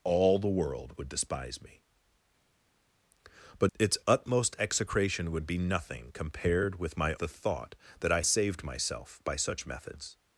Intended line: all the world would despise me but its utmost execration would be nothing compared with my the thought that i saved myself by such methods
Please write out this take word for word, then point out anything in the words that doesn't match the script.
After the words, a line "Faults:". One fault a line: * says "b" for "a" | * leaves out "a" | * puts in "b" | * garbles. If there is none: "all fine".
all the world would despise me but its utmost execration would be nothing compared with my the thought that i saved myself by such methods
Faults:
all fine